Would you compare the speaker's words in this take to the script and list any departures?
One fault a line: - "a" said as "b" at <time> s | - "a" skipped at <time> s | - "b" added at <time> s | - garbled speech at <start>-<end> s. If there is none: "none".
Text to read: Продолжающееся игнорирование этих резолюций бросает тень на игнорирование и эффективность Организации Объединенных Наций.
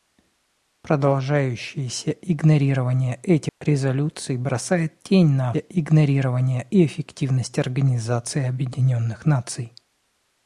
none